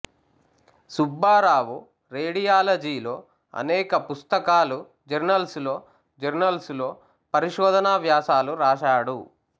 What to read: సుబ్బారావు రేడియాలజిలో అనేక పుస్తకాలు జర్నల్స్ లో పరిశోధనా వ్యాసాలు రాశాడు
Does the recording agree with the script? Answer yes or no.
no